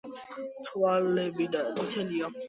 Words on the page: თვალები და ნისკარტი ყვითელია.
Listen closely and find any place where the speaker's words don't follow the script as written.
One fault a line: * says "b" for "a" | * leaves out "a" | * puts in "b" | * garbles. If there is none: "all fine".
* leaves out "ნისკარტი"